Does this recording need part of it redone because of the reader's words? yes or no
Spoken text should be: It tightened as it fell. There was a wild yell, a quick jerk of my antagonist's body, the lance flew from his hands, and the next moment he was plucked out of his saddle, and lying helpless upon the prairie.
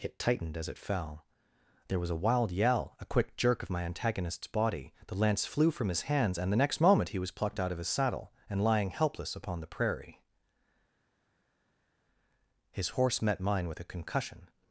yes